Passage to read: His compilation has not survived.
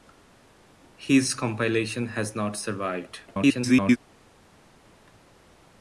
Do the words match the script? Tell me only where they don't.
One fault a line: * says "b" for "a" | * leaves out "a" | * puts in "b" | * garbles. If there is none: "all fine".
* garbles